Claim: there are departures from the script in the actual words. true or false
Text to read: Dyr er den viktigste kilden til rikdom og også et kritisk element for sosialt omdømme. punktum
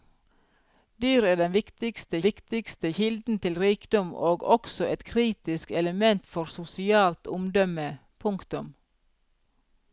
true